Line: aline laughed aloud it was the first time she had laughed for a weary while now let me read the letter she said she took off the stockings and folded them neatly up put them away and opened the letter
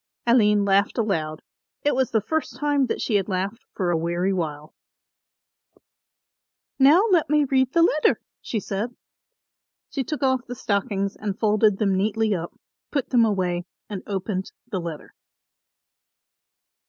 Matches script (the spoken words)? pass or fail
fail